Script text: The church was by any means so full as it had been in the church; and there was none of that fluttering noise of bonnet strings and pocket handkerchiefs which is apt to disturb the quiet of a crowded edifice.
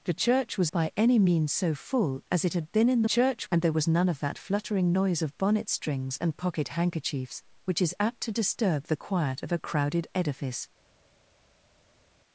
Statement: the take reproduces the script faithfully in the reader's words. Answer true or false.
true